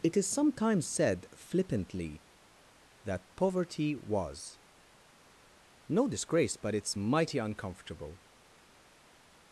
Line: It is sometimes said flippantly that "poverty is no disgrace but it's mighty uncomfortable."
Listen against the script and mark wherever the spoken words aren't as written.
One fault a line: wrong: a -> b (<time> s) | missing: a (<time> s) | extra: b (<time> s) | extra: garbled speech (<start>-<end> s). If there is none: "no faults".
wrong: is -> was (3.9 s)